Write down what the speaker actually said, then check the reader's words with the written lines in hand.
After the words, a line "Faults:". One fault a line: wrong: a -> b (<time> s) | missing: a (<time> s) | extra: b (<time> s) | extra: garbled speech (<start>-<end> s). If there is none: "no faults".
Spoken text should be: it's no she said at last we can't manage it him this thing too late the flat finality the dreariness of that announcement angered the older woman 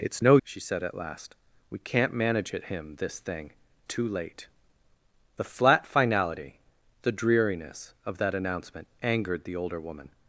it's no she said at last we can't manage it him this thing too late the flat finality the dreariness of that announcement angered the older woman
Faults:
no faults